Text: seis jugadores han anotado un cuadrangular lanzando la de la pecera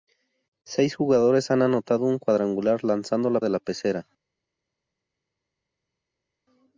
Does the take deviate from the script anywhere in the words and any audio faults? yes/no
no